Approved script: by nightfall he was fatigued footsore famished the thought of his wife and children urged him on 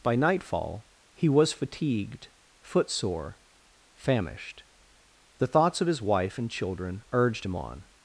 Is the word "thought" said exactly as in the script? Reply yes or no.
no